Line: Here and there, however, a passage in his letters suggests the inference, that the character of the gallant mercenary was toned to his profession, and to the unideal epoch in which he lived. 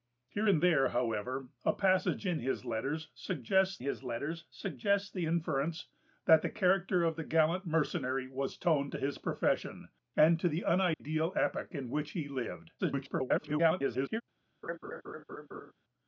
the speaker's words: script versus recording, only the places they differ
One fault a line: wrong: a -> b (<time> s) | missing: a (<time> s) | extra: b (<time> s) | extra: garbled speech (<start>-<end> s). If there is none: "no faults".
extra: his letters suggests (3.8 s)
extra: garbled speech (12.8-14.2 s)